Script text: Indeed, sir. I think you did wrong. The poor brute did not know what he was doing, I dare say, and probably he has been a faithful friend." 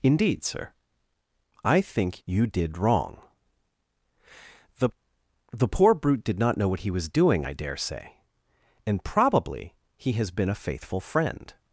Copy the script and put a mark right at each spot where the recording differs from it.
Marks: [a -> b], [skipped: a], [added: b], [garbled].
Indeed, sir. I think you did wrong. The [added: The] poor brute did not know what he was doing, I dare say, and probably he has been a faithful friend."